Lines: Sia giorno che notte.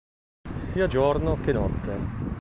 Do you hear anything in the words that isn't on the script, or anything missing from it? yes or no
no